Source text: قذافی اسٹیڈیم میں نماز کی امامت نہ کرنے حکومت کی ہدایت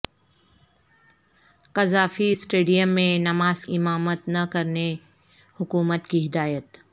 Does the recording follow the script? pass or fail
fail